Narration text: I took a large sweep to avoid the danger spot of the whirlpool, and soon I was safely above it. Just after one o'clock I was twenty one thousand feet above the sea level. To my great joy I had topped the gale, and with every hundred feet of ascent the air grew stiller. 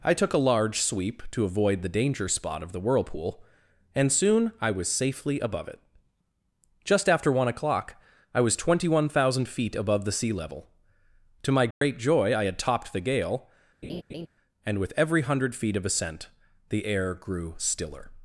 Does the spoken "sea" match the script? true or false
true